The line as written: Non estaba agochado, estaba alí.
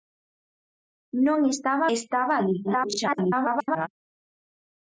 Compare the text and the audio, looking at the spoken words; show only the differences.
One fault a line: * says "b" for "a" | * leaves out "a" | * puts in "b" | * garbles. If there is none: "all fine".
* leaves out "agochado"
* garbles